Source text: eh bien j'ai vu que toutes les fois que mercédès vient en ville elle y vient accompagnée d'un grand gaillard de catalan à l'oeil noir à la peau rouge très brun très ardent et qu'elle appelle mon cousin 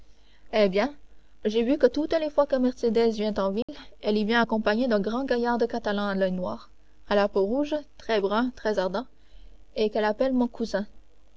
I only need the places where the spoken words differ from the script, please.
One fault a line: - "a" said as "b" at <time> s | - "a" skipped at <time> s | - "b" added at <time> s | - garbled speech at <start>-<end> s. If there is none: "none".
none